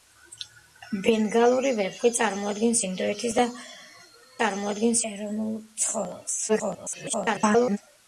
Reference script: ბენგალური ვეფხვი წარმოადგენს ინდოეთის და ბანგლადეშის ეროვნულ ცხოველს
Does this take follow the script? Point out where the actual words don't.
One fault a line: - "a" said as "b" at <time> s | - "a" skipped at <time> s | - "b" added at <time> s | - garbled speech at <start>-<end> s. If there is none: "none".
- "ბანგლადეშის" said as "წარმოადგენს" at 4.4 s
- garbled speech at 6.5-7.8 s